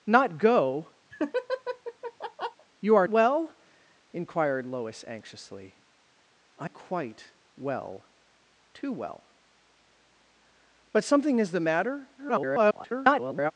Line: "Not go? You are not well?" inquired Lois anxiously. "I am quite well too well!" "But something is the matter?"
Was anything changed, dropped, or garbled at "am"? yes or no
yes